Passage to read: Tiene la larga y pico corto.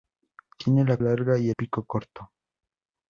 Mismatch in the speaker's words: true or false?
false